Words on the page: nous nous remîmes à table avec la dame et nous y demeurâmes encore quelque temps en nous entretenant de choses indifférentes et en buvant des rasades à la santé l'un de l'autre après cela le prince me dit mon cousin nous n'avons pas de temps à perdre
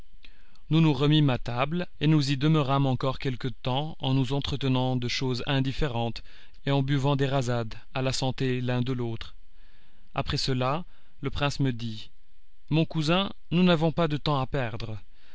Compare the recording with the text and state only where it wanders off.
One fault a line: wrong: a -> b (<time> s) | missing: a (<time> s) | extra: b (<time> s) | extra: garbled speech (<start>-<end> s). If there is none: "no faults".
missing: avec la dame (1.9 s)